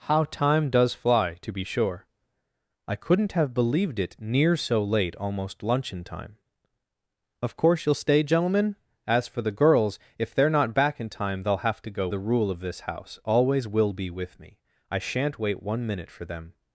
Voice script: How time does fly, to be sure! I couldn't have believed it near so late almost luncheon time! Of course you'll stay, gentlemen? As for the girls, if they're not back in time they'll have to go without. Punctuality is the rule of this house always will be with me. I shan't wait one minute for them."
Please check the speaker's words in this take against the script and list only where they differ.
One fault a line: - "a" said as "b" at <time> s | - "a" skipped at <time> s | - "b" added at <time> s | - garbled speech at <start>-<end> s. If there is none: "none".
- "without Punctuality is" skipped at 12.1 s